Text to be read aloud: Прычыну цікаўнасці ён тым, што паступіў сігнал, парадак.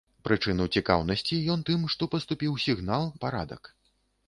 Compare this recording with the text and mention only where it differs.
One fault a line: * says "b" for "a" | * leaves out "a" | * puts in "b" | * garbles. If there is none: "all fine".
all fine